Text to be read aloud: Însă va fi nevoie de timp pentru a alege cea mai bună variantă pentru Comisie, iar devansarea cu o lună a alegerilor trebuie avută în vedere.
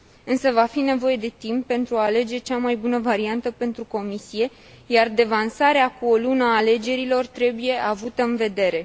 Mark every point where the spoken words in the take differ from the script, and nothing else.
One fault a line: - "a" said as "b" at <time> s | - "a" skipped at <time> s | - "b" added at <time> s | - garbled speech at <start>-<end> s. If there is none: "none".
none